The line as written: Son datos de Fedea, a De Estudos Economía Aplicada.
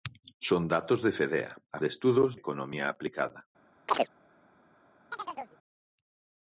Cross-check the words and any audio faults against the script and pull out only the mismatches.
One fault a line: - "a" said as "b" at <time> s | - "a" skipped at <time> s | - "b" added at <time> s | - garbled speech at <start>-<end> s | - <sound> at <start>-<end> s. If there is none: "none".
- chirp at 3.9-4.1 s
- chirp at 5.1-5.6 s